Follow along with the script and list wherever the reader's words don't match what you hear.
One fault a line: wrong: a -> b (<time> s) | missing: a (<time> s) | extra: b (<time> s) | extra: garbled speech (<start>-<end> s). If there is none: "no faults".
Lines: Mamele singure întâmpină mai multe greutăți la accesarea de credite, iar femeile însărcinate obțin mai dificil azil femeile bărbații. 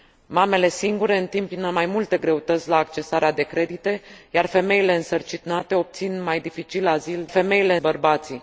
no faults